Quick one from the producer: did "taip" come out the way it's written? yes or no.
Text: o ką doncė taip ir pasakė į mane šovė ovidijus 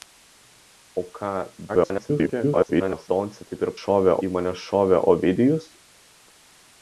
yes